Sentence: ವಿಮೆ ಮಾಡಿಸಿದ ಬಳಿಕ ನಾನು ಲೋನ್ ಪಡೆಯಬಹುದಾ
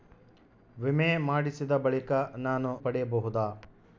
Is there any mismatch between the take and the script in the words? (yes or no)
yes